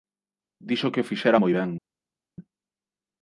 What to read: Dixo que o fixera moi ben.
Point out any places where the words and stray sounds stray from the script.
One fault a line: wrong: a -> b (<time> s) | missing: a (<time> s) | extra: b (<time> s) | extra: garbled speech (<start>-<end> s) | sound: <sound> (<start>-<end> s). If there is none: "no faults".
no faults